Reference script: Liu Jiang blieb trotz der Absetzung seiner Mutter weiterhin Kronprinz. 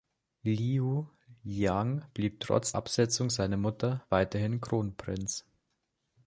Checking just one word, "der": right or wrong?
wrong